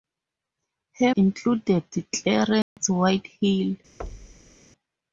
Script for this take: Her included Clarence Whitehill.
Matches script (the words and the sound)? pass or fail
fail